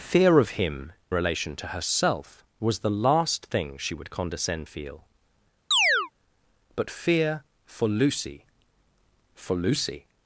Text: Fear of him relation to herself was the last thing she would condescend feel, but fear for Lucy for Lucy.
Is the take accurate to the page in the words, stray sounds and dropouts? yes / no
no